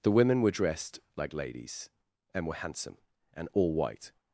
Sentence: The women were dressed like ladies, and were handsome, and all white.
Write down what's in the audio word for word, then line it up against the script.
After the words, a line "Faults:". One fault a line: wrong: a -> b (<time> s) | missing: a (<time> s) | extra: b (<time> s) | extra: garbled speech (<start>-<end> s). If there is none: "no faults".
The women were dressed like ladies, and were handsome, and all white.
Faults:
no faults